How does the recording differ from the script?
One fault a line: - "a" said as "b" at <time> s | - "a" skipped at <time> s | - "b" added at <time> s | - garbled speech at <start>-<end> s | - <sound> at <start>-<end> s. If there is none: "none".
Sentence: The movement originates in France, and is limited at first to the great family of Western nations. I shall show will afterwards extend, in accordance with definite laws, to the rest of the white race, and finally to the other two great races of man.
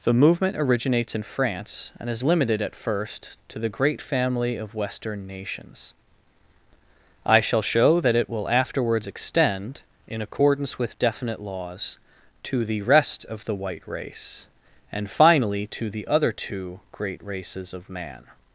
- "that it" added at 8.0 s